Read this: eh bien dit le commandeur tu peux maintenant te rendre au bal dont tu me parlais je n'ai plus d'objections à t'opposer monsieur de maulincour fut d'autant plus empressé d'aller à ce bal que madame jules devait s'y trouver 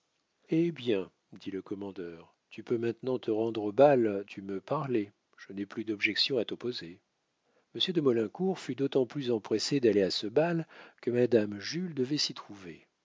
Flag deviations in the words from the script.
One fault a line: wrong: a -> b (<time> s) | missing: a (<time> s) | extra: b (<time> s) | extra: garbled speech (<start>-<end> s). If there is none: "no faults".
missing: dont (4.2 s)